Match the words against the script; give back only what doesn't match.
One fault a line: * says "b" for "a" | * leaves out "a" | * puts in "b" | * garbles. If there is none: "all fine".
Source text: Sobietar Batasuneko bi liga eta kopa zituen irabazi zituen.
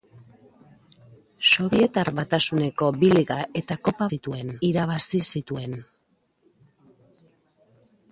all fine